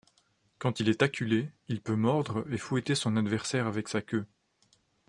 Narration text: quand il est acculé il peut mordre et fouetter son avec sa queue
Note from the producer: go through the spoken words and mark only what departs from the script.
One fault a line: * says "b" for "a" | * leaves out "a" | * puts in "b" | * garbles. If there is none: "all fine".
* puts in "adversaire"